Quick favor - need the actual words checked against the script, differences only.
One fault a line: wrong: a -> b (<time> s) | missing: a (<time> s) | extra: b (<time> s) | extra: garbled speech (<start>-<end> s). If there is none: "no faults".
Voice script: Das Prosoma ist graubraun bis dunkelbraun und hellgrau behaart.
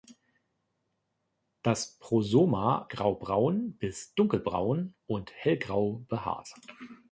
missing: ist (2.9 s)